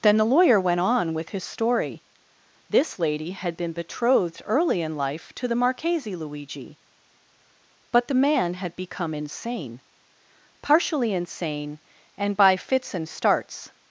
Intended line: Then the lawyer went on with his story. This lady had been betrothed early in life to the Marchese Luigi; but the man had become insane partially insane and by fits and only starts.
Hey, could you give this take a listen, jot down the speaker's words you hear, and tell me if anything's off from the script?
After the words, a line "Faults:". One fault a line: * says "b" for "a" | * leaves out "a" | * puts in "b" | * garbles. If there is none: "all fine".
Then the lawyer went on with his story. This lady had been betrothed early in life to the Marchese Luigi; but the man had become insane partially insane and by fits and starts.
Faults:
* leaves out "only"